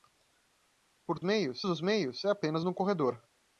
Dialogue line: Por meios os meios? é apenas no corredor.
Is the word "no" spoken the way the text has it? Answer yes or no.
yes